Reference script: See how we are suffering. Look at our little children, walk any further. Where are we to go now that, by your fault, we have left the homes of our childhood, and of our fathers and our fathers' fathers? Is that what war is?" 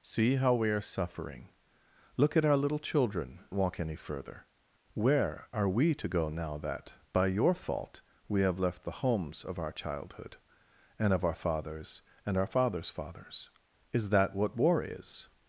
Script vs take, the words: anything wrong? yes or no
no